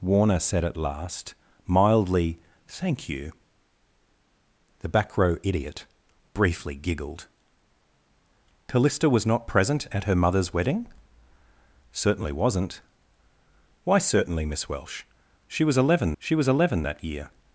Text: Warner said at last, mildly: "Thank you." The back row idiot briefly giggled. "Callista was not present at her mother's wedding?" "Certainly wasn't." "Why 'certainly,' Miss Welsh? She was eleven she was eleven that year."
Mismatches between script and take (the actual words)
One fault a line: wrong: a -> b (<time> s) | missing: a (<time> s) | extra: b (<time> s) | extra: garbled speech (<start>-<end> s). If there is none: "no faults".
no faults